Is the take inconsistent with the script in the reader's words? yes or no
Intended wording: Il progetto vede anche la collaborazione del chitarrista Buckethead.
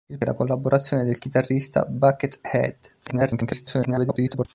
yes